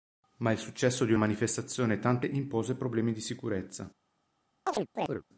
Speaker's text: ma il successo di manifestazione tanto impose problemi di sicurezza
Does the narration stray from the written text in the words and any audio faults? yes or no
yes